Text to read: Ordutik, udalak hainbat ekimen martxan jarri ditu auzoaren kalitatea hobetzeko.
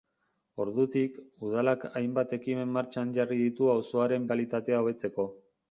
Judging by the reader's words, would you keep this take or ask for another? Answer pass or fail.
pass